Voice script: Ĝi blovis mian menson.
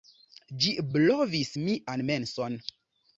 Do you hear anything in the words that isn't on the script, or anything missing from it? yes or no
no